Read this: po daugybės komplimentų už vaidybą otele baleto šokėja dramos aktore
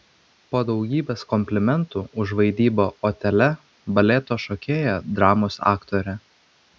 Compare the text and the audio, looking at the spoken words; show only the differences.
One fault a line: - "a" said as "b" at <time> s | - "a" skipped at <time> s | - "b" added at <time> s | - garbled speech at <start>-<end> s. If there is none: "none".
none